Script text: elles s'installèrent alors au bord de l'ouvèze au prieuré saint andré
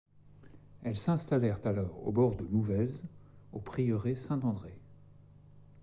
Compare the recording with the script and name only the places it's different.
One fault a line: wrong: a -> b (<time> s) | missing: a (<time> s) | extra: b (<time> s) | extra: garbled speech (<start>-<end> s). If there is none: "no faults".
no faults